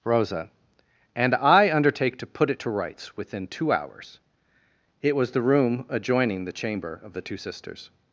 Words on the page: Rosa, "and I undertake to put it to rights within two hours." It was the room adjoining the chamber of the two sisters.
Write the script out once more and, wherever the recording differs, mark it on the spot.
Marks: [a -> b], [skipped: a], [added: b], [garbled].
Rosa, "and I undertake to put it to rights within two hours." It was the room adjoining the chamber of the two sisters.